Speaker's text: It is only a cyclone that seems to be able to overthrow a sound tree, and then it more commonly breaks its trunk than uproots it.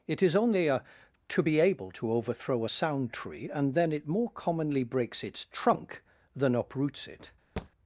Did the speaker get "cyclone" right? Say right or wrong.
wrong